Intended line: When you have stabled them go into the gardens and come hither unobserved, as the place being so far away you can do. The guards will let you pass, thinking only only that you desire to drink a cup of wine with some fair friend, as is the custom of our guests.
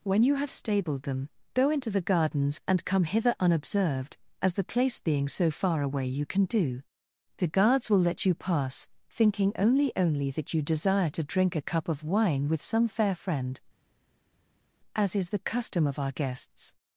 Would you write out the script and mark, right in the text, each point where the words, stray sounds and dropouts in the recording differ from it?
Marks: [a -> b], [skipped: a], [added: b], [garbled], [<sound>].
When you have stabled them go into the gardens and come hither unobserved, as the place being so far away you can do. The guards will let you pass, thinking only only that you desire to drink a cup of wine with some fair friend, as is the custom of our guests.